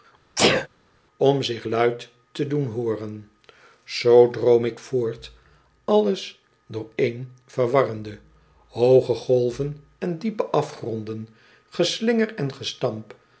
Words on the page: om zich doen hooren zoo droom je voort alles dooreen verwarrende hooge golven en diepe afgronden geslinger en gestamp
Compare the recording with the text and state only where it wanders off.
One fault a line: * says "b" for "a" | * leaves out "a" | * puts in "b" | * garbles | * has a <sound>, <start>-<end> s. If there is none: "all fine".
* has a sneeze, 0.3-0.7 s
* puts in "luid te"
* says "ik" for "je"